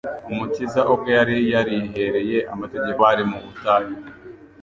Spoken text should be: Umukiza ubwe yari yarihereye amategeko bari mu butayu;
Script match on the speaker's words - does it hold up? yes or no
yes